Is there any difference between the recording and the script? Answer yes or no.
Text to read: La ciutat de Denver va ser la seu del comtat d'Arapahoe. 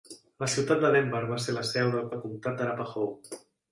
yes